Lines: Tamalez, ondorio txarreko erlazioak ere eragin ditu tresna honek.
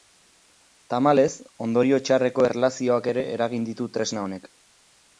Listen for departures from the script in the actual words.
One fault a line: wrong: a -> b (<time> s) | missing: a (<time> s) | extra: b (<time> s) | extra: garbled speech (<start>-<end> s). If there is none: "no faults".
no faults